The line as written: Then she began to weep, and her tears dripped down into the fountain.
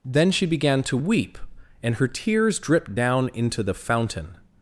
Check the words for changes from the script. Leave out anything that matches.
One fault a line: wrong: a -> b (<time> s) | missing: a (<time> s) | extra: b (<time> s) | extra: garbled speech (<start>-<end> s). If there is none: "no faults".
no faults